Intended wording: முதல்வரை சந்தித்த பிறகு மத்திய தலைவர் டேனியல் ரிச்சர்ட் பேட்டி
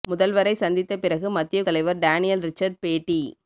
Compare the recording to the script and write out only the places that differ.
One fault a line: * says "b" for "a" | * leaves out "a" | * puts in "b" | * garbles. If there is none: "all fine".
all fine